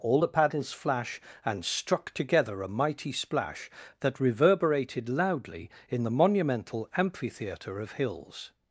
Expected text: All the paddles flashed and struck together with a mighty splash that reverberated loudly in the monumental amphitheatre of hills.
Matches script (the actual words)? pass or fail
fail